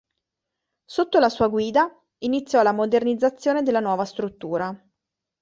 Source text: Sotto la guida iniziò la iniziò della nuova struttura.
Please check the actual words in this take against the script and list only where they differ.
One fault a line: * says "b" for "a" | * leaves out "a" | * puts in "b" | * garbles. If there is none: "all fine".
* puts in "sua"
* says "modernizzazione" for "iniziò"